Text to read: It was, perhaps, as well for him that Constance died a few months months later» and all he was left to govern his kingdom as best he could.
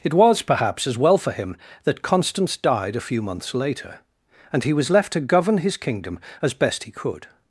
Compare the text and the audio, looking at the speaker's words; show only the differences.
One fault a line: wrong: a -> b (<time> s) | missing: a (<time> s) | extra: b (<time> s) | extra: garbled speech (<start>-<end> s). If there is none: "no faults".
missing: months (3.5 s)
missing: all (4.7 s)